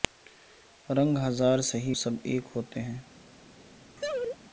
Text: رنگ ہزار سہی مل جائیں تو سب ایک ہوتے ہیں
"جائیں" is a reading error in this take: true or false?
true